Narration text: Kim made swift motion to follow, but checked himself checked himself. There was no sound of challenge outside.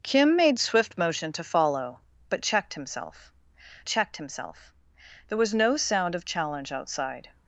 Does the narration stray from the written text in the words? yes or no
no